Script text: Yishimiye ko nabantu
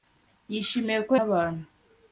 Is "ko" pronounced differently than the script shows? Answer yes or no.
no